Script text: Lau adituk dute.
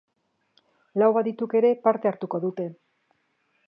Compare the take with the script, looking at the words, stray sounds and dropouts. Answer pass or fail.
fail